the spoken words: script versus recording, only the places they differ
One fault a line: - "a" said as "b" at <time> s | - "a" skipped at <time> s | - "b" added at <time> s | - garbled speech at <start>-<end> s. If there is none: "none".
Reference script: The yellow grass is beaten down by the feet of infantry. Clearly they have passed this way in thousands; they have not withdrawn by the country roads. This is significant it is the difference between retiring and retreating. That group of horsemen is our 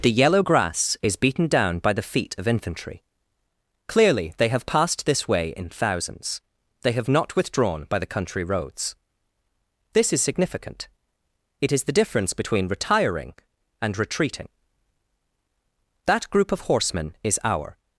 none